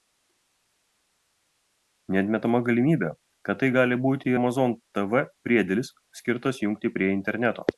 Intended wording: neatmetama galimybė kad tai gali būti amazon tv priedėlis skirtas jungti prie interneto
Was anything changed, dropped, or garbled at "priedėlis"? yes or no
no